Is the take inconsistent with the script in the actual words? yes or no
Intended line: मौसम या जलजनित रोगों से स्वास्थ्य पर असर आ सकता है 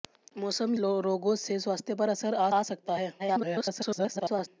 yes